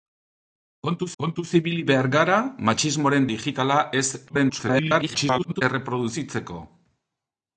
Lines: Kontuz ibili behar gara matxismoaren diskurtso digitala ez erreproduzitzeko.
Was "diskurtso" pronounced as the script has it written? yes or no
no